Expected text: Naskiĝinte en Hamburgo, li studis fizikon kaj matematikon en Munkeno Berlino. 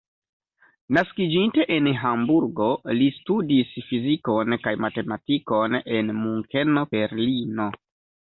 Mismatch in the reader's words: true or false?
false